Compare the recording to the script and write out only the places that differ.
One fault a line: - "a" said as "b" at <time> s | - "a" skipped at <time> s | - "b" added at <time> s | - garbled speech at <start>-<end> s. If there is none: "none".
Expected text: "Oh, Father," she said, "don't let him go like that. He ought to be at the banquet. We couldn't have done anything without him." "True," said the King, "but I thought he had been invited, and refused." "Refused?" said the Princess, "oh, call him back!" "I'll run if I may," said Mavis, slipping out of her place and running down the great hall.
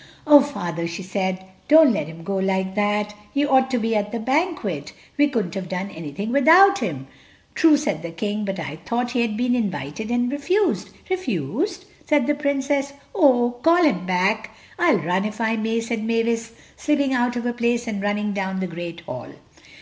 none